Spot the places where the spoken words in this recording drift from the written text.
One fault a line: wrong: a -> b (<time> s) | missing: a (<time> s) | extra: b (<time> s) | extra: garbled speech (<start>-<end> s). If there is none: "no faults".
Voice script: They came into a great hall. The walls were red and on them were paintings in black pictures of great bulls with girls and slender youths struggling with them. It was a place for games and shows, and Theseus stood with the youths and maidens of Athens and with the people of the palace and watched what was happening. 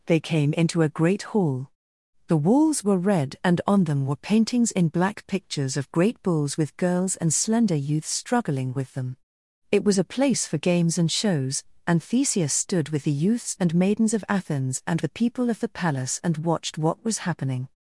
missing: with (15.0 s)